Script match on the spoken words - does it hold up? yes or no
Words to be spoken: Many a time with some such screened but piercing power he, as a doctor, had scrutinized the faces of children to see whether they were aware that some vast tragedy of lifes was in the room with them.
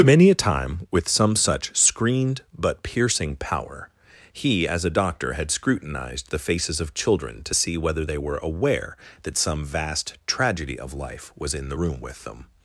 no